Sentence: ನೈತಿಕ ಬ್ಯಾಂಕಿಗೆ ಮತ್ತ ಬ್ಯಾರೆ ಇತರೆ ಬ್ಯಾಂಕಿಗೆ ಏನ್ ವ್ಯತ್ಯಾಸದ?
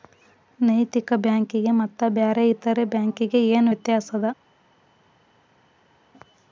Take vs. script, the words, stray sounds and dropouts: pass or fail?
pass